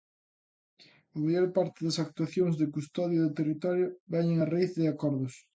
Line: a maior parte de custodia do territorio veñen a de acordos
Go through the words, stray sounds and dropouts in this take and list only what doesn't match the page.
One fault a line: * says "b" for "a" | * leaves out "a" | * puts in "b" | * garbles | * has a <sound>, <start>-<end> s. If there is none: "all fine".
* puts in "das actuacións"
* puts in "raíz"